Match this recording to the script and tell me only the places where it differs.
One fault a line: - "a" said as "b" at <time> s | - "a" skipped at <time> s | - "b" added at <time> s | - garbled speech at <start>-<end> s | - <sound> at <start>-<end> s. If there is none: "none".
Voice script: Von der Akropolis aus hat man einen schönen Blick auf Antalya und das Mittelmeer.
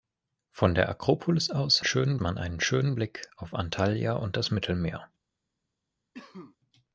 - "hat" said as "schönen" at 1.8 s
- cough at 6.1-6.6 s